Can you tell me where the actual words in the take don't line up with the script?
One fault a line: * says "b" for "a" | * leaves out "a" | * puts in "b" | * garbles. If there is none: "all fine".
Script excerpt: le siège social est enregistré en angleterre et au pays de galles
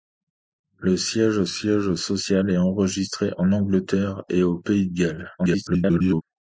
* puts in "siège"
* garbles